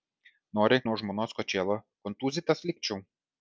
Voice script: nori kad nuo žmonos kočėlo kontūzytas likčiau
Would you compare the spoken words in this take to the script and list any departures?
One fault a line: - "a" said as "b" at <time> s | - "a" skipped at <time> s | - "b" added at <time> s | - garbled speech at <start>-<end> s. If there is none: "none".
- "kad" skipped at 0.8 s